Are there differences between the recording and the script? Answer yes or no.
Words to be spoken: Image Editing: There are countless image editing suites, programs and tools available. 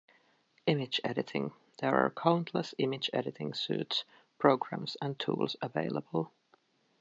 no